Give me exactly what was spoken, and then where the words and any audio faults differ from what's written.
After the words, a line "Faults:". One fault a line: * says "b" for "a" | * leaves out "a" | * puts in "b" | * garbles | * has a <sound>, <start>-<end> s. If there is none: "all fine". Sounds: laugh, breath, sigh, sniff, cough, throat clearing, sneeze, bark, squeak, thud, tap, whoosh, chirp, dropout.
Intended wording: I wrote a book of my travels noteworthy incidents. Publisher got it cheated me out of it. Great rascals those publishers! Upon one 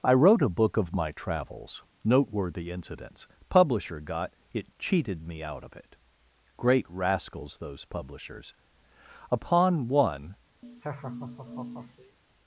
I wrote a book of my travels noteworthy incidents. Publisher got it cheated me out of it. Great rascals those publishers! Upon one
Faults:
* has a laugh, 10.6-12.2 s